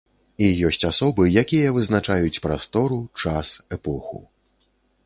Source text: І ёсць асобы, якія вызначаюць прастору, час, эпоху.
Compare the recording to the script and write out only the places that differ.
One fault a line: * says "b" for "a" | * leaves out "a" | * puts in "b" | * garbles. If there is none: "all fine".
all fine